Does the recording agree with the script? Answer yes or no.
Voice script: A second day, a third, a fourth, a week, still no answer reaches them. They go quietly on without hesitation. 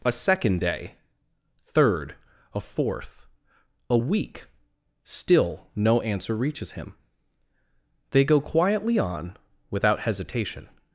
no